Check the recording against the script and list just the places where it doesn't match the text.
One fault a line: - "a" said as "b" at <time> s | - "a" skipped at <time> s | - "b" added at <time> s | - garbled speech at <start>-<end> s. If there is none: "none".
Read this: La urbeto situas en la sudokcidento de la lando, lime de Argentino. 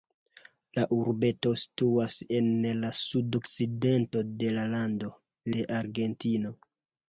- "lime" skipped at 5.1 s